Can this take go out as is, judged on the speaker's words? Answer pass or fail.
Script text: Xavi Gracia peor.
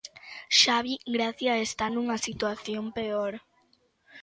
fail